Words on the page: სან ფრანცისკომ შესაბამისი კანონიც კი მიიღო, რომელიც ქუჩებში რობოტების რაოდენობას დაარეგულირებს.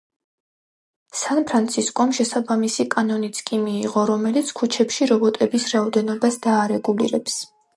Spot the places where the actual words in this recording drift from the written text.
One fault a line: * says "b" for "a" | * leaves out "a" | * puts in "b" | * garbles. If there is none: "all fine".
all fine